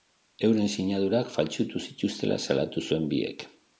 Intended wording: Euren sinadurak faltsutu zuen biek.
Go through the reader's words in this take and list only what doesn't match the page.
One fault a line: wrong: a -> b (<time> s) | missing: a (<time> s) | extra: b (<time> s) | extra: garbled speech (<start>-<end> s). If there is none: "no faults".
extra: zituztela salatu (1.9 s)